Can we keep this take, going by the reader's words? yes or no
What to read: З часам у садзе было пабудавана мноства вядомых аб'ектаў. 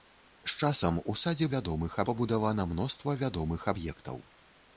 no